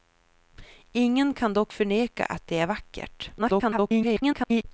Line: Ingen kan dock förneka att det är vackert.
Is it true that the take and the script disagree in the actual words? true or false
true